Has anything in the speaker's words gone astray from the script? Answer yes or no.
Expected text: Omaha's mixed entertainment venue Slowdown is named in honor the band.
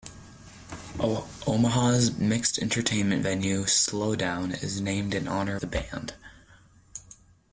no